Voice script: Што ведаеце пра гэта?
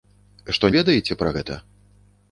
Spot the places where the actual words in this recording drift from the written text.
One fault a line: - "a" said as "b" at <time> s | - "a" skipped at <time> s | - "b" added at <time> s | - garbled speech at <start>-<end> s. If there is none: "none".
none